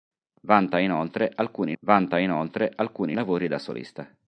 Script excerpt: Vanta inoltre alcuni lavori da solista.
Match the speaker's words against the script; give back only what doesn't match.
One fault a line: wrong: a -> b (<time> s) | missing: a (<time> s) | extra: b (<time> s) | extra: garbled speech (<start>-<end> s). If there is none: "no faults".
extra: vanta inoltre alcuni (1.8 s)